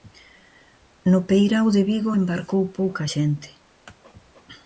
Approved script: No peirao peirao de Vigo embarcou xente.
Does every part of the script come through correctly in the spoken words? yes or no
no